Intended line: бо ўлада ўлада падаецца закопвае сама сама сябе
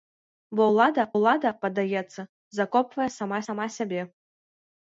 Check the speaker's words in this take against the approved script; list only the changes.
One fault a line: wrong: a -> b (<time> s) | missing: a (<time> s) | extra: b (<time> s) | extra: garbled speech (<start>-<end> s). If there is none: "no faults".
no faults